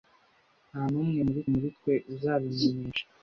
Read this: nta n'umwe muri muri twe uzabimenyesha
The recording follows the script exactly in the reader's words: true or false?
true